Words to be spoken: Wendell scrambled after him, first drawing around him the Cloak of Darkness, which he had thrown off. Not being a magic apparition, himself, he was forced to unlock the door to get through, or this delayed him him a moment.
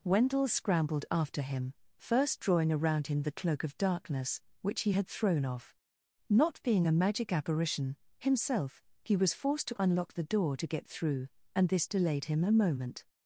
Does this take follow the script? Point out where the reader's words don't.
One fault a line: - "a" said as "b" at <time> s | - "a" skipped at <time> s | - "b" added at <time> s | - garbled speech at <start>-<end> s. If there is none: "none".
- "or" said as "and" at 11.5 s
- "him" skipped at 12.4 s